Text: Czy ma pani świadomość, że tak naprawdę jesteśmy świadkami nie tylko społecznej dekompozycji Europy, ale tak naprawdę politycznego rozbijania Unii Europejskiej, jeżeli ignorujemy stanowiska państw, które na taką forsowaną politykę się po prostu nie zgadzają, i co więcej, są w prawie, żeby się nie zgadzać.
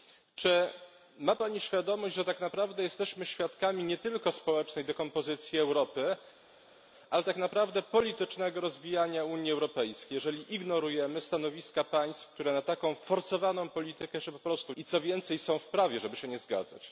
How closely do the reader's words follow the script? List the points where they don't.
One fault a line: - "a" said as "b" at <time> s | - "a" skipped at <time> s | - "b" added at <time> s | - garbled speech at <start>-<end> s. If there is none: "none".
- "nie zgadzają" skipped at 14.7 s